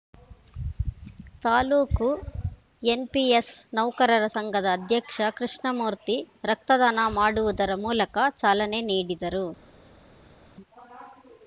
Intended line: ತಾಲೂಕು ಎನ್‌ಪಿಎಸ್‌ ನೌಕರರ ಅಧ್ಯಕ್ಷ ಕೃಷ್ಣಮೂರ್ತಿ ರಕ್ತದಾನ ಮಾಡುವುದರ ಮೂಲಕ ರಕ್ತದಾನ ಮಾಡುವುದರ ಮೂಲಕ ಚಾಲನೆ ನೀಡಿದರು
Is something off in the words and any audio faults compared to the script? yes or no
yes